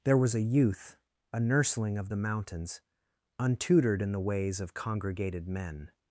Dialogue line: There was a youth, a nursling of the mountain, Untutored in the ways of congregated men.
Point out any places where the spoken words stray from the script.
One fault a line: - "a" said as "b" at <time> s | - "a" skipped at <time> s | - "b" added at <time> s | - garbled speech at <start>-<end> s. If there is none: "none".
- "mountain" said as "mountains" at 2.2 s